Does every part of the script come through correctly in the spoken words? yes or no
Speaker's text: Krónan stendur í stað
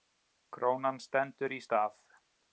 yes